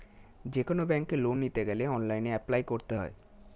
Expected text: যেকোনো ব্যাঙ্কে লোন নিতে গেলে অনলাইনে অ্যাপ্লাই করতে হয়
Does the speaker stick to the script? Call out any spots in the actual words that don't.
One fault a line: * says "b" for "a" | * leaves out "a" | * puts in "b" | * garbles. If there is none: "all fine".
all fine